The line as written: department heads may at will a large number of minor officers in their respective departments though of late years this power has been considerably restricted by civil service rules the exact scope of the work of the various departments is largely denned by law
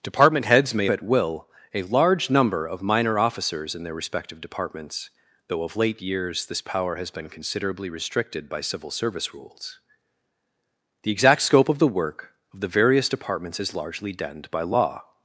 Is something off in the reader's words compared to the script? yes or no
no